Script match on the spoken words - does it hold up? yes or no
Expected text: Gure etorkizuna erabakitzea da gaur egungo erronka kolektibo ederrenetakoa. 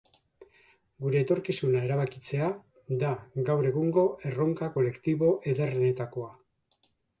yes